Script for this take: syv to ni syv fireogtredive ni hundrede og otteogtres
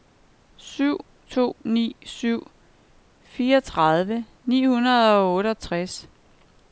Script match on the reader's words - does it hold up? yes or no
yes